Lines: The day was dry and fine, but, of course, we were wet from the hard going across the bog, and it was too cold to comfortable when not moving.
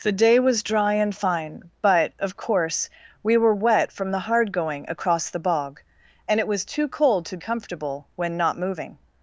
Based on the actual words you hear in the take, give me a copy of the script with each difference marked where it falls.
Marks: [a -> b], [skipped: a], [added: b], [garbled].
The day was dry and fine, but, of course, we were wet from the hard going across the bog, and it was too cold to comfortable when not moving.